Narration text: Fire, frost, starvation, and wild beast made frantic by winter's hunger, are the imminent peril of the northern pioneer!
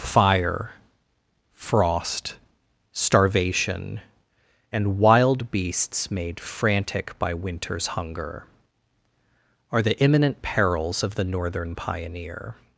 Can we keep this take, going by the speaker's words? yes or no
no